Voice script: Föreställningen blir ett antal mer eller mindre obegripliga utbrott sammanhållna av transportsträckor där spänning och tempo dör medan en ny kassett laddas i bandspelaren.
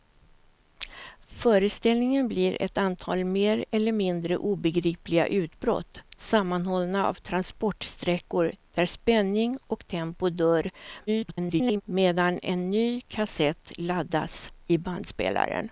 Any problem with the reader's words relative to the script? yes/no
yes